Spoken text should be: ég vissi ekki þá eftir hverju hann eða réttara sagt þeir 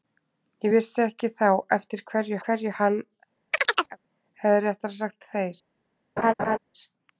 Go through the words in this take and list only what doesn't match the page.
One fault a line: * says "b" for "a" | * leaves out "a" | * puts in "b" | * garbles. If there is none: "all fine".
* puts in "hverju"